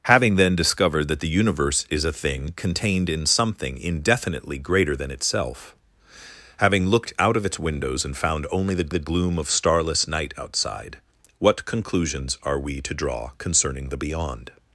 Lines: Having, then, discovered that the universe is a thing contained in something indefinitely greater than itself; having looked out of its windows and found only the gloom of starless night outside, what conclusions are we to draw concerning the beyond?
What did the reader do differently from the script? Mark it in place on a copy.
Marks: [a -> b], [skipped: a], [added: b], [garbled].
Having, then, discovered that the universe is a thing contained in something indefinitely greater than itself; having looked out of its windows and found only the [added: the] gloom of starless night outside, what conclusions are we to draw concerning the beyond?